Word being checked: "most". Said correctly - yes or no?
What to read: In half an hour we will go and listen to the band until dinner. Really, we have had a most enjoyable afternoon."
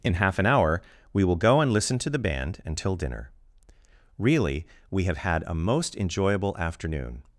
yes